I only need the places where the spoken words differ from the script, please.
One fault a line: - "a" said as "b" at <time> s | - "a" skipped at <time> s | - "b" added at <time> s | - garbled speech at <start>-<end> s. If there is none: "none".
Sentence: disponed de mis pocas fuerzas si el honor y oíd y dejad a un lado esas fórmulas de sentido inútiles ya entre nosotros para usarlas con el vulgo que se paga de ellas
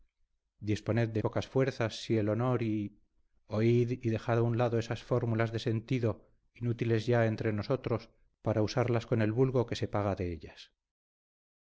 - "mis" skipped at 1.2 s